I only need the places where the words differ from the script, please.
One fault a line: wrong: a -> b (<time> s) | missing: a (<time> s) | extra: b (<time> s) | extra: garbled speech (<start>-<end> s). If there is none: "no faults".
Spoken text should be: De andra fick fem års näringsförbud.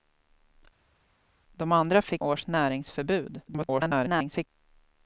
missing: fem (2.2 s)
extra: garbled speech (3.5-4.5 s)